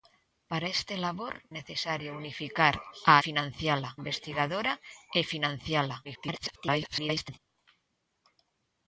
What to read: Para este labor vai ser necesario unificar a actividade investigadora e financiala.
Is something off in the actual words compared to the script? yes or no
yes